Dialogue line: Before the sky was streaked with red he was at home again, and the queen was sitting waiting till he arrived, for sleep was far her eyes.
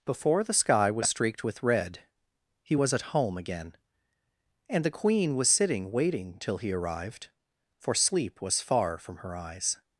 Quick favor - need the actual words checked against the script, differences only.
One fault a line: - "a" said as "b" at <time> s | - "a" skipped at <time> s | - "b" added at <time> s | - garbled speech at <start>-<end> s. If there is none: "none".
- "from" added at 9.0 s